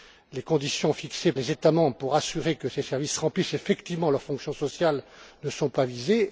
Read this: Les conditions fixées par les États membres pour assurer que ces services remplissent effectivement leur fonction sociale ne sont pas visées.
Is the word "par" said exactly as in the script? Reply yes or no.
no